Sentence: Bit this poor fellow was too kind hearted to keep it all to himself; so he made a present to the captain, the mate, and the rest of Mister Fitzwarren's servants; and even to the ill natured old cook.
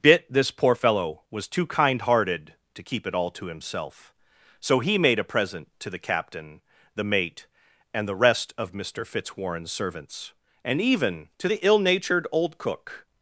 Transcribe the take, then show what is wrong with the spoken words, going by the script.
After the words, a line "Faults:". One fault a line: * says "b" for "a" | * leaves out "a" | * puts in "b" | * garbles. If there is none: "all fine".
Bit this poor fellow was too kind hearted to keep it all to himself; so he made a present to the captain, the mate, and the rest of Mister Fitzwarren's servants; and even to the ill natured old cook.
Faults:
all fine